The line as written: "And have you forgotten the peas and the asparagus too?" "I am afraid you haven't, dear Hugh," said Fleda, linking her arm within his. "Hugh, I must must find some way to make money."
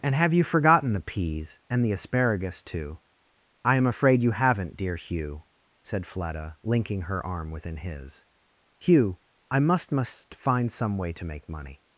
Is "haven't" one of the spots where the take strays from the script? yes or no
no